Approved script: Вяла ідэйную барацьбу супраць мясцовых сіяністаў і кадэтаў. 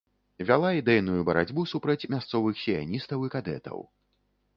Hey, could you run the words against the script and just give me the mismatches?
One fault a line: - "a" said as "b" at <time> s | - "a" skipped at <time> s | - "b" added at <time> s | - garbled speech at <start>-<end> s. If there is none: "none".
none